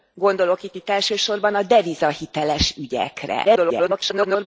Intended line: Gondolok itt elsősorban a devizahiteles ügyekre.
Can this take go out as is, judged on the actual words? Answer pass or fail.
fail